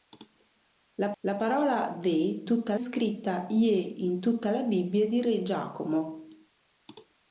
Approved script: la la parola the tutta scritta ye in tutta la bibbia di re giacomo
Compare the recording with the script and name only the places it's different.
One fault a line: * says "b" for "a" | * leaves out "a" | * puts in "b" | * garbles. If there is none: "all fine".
all fine